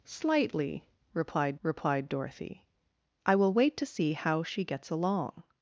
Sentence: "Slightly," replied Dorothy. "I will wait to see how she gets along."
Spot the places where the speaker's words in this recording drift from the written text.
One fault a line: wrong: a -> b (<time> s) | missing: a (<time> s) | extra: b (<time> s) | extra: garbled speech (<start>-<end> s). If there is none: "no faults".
extra: replied (1.6 s)